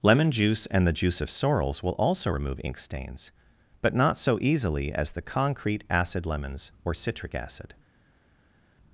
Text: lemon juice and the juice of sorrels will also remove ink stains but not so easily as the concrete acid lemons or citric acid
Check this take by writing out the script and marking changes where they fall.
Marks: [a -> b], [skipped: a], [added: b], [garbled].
lemon juice and the juice of sorrels will also remove ink stains but not so easily as the concrete acid lemons or citric acid